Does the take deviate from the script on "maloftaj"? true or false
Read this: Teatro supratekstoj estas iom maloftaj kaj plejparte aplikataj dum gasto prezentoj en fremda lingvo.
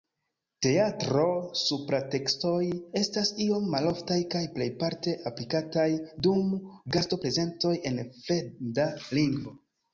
false